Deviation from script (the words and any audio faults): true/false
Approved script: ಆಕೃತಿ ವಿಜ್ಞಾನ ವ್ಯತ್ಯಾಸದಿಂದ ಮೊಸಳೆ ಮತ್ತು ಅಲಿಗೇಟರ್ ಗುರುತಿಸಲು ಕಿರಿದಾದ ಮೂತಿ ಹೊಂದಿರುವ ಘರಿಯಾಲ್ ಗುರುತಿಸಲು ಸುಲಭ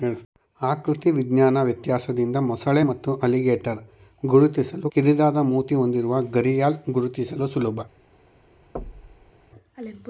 true